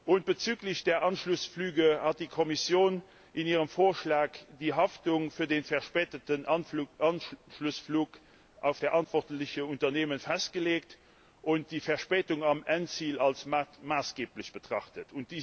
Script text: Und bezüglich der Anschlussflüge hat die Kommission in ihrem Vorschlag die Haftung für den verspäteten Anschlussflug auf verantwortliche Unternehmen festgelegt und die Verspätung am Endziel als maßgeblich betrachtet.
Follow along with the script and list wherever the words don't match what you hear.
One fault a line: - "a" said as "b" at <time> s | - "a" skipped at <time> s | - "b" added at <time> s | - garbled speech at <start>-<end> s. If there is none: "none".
none